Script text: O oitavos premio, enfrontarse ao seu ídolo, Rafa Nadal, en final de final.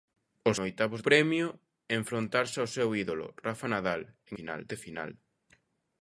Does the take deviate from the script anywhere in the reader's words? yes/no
no